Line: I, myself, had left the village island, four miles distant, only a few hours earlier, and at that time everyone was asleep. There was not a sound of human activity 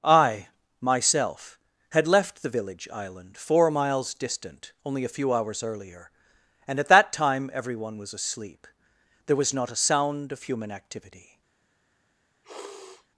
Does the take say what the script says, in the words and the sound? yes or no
no